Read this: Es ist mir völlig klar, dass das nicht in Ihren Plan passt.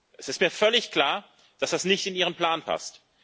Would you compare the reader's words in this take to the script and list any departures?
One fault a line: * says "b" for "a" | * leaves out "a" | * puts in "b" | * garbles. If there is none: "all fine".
all fine